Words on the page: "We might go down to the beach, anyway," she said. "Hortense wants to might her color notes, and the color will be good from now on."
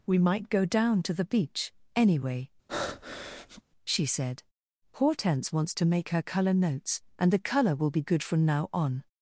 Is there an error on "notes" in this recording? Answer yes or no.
no